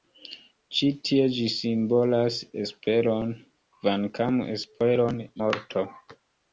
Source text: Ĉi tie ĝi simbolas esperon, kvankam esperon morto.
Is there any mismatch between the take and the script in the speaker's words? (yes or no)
no